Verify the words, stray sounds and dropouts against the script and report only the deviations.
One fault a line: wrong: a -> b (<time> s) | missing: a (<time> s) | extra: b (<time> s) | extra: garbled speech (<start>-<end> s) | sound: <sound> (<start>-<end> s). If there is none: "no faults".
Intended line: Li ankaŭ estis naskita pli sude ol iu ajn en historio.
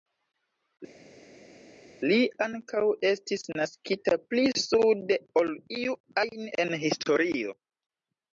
no faults